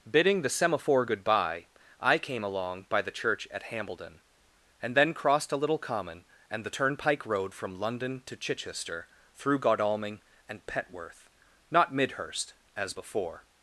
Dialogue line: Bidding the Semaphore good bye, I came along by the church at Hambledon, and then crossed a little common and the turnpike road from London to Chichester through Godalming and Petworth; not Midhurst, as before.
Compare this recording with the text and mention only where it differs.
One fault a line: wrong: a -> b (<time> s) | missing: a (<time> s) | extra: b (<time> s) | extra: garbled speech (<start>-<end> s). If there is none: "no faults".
no faults